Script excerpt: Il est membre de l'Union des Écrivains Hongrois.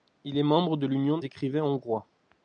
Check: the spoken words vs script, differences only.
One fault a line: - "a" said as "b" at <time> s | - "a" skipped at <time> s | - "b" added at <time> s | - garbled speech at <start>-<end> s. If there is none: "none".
- "des" skipped at 1.2 s